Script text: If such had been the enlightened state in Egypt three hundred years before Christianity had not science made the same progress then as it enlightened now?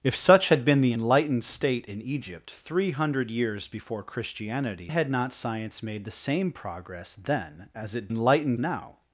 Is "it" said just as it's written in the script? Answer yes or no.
yes